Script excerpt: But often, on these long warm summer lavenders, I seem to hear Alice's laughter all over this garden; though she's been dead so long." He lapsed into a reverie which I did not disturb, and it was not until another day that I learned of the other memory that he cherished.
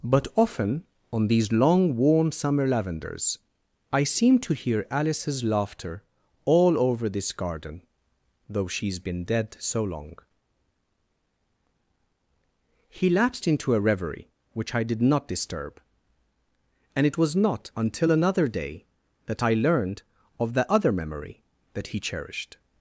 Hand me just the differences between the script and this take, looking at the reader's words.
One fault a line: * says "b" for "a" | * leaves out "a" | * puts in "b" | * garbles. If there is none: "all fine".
all fine